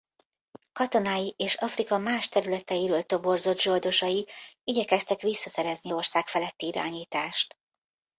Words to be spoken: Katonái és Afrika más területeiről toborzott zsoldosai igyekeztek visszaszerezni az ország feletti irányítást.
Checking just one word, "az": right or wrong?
wrong